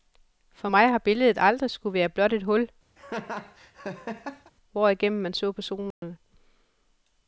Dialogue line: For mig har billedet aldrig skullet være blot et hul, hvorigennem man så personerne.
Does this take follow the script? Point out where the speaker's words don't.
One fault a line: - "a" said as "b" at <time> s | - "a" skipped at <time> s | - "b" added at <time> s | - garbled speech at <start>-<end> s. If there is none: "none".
none